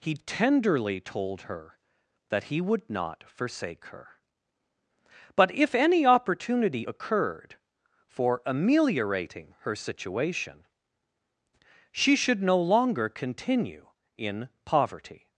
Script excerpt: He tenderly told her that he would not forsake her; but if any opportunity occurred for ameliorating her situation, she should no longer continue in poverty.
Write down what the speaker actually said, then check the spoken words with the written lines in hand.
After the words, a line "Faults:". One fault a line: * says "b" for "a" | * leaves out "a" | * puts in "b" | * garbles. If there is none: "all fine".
He tenderly told her that he would not forsake her; but if any opportunity occurred for ameliorating her situation, she should no longer continue in poverty.
Faults:
all fine